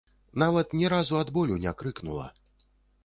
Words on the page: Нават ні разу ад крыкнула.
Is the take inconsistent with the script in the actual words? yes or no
yes